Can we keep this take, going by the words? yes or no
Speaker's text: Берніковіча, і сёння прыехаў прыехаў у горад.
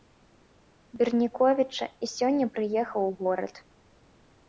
no